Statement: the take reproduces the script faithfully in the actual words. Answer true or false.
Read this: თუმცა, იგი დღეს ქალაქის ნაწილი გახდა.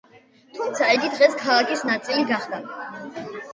true